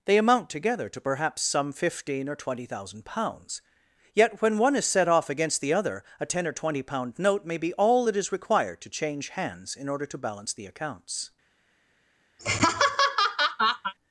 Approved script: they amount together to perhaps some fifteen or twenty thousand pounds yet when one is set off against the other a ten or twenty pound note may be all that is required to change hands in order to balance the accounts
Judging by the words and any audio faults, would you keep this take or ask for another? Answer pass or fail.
fail